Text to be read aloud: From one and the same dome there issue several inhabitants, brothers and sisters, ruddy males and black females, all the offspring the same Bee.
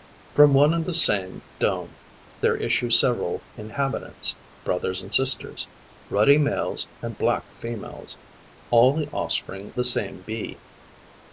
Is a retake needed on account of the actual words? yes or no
no